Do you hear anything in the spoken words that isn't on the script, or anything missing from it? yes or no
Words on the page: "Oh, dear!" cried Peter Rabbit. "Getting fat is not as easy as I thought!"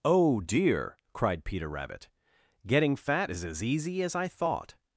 yes